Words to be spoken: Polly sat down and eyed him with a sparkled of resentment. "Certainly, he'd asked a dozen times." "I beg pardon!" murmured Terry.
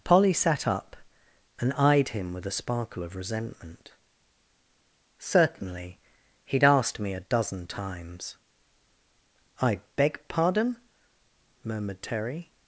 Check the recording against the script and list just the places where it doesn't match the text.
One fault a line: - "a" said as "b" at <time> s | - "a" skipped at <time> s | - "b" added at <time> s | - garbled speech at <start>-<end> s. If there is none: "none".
- "down" said as "up" at 0.7 s
- "sparkled" said as "sparkle" at 2.5 s
- "me" added at 7.0 s